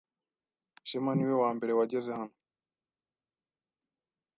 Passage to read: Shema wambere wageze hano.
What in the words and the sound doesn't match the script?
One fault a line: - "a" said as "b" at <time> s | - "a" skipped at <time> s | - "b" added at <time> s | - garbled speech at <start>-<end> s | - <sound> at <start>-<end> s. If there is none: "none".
- "niwe" added at 1.1 s